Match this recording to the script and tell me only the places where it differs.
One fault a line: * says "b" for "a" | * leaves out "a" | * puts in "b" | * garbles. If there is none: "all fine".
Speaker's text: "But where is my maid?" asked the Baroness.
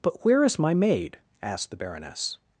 all fine